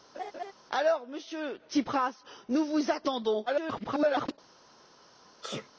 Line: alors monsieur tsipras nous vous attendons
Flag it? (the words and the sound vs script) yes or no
yes